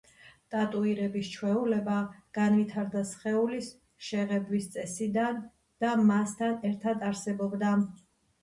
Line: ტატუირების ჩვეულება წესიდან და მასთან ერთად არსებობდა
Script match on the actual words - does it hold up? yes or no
no